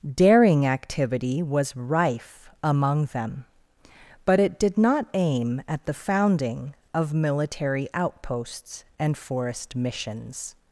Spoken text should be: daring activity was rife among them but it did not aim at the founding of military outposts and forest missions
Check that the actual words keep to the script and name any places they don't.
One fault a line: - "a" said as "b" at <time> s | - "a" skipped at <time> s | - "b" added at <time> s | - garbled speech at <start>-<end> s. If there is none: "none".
none